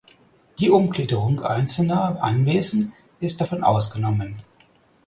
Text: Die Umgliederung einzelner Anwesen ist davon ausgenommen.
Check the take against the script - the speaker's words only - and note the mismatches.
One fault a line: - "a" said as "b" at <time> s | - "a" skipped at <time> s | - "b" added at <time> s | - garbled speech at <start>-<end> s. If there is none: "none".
none